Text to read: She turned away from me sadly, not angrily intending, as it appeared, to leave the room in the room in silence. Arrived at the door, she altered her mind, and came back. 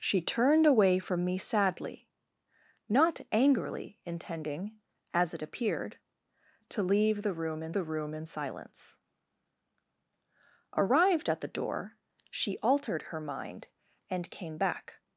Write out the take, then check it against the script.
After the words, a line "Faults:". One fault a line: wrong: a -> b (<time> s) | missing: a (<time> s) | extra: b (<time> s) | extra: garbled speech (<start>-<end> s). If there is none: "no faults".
She turned away from me sadly, not angrily intending, as it appeared, to leave the room in the room in silence. Arrived at the door, she altered her mind, and came back.
Faults:
no faults